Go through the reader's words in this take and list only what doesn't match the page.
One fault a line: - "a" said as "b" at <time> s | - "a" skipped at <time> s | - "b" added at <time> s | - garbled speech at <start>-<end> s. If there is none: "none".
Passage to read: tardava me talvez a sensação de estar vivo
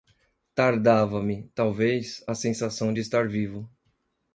none